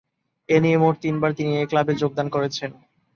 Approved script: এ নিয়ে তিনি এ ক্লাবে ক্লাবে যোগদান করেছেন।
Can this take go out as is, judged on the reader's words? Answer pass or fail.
fail